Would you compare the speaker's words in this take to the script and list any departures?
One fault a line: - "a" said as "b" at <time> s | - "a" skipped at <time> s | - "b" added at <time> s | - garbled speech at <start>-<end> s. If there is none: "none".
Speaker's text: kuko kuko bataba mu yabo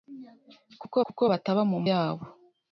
none